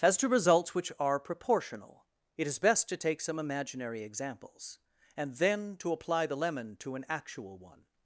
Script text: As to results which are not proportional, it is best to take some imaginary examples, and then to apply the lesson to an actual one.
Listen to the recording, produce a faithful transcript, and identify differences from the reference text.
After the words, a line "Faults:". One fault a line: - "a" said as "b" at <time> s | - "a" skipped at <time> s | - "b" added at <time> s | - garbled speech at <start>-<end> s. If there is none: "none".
As to results which are proportional, it is best to take some imaginary examples, and then to apply the lemon to an actual one.
Faults:
- "not" skipped at 1.2 s
- "lesson" said as "lemon" at 6.3 s